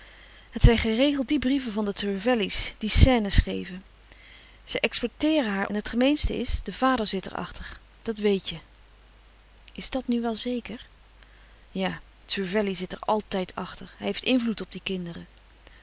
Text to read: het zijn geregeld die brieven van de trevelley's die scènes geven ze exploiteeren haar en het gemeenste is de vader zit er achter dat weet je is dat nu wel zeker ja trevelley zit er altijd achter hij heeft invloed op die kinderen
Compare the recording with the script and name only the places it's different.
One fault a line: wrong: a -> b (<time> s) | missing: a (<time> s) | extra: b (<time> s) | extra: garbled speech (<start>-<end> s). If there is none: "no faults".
no faults